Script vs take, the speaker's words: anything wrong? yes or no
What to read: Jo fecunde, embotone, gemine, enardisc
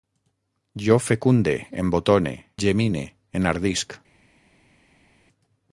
no